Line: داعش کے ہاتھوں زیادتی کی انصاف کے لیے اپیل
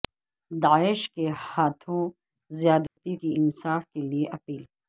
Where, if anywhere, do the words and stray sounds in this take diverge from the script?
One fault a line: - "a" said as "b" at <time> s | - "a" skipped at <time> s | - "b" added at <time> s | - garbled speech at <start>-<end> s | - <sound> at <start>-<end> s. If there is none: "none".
- dropout at 2.9-3.0 s